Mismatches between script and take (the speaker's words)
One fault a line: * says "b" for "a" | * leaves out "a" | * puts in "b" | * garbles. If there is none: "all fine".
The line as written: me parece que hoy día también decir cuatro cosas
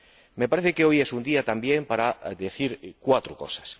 * puts in "es un"
* puts in "para"